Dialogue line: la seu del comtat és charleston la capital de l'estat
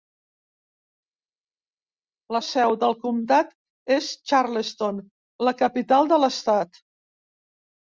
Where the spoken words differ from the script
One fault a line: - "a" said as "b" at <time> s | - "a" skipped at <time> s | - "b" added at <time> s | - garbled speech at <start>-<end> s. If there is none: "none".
none